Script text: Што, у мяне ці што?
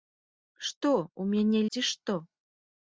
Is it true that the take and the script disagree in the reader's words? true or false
false